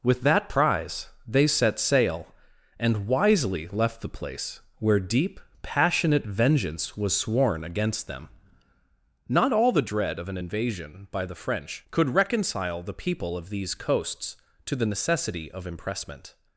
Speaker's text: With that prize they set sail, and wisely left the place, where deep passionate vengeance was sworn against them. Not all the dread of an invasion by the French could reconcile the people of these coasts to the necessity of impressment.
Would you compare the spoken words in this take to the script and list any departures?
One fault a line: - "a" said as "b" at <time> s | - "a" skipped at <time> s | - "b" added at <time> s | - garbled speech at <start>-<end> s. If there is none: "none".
none